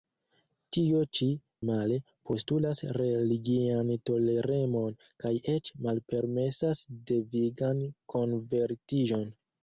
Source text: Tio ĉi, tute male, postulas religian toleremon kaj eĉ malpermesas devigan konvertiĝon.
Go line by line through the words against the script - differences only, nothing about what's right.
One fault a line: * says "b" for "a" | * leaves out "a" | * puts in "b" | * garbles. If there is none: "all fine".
* leaves out "tute"